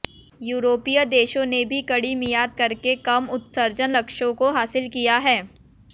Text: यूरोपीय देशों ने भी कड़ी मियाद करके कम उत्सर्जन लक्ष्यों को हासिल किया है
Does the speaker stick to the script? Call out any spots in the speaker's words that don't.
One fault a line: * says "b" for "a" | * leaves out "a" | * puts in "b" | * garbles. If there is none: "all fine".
all fine